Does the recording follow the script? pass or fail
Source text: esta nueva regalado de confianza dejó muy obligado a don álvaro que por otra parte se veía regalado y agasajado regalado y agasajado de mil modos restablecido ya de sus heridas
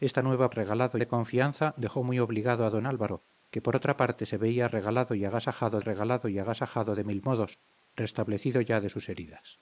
pass